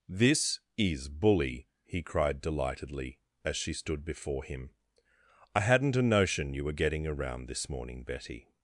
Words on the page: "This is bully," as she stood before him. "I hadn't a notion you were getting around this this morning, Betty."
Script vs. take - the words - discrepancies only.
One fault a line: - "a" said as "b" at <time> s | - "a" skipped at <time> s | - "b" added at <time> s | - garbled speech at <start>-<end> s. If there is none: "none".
- "he cried delightedly" added at 1.9 s
- "this" skipped at 7.7 s